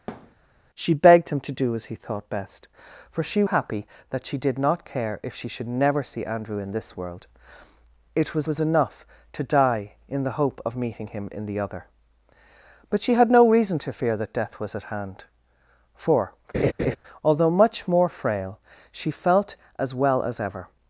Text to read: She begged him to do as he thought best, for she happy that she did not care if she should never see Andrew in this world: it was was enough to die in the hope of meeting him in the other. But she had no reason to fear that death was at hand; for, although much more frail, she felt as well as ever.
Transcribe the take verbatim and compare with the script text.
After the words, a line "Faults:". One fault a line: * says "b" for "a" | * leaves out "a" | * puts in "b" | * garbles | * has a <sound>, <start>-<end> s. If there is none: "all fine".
She begged him to do as he thought best, for she happy that she did not care if she should never see Andrew in this world: it was was enough to die in the hope of meeting him in the other. But she had no reason to fear that death was at hand; for, although much more frail, she felt as well as ever.
Faults:
* has a thud, 0.1-0.4 s
* has a laugh, 16.5-17.0 s